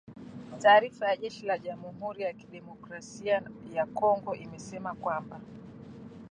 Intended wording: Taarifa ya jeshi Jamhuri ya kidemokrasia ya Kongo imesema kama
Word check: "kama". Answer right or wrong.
wrong